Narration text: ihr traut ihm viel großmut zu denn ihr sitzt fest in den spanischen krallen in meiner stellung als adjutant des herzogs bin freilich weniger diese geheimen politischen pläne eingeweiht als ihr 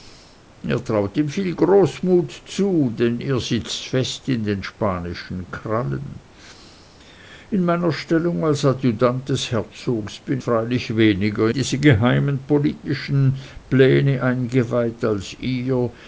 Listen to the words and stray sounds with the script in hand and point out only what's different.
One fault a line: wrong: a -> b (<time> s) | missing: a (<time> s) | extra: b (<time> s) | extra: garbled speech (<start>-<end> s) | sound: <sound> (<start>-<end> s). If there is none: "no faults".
no faults